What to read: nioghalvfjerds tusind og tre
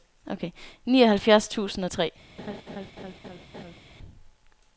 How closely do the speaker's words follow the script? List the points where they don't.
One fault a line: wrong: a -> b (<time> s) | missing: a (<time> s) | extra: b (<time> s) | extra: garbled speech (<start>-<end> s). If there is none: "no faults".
no faults